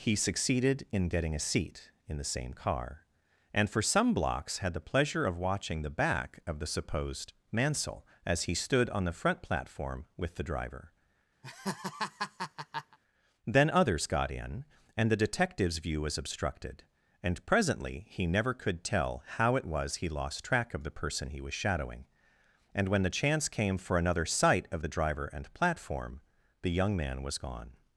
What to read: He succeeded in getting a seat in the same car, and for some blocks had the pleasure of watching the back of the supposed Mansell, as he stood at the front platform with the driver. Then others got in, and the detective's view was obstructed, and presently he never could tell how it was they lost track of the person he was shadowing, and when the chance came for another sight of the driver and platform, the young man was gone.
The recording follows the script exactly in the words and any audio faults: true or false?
false